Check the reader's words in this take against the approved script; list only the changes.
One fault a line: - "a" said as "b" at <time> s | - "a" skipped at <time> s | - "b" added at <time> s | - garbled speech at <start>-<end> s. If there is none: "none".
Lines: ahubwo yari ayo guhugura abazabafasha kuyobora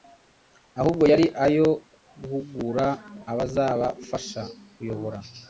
none